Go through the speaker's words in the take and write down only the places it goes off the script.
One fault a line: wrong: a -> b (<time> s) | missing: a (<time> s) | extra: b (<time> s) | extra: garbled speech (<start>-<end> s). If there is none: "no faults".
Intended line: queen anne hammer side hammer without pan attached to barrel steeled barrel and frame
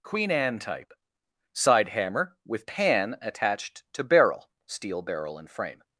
wrong: hammer -> type (0.6 s)
wrong: without -> with (2.4 s)
wrong: steeled -> steel (4.7 s)